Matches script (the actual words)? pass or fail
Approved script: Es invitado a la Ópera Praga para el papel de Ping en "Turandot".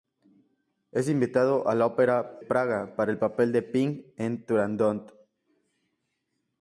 pass